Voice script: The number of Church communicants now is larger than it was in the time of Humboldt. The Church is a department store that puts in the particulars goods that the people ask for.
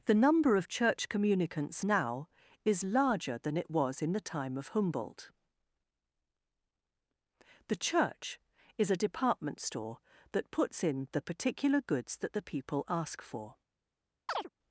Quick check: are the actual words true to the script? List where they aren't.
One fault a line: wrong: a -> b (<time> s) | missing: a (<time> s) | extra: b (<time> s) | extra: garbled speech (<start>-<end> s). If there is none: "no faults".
wrong: particulars -> particular (11.2 s)